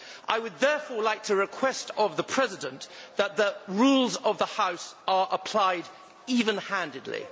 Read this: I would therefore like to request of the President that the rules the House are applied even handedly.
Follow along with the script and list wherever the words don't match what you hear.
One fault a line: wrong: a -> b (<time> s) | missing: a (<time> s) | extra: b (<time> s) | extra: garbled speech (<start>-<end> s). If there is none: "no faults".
extra: of (4.2 s)